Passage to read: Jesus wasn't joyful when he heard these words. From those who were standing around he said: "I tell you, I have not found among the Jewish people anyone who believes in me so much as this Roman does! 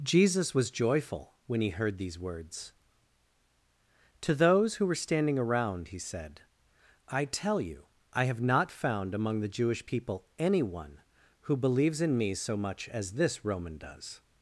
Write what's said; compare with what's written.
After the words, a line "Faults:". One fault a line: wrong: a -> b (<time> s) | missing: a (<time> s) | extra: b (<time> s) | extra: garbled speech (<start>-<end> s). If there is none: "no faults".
Jesus was joyful when he heard these words. To those who were standing around he said: "I tell you, I have not found among the Jewish people anyone who believes in me so much as this Roman does!
Faults:
wrong: wasn't -> was (0.6 s)
wrong: From -> To (4.2 s)